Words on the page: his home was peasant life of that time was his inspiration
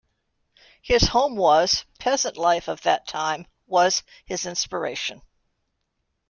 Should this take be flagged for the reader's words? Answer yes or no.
no